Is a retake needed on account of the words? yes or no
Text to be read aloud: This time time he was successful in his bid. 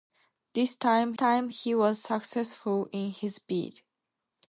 no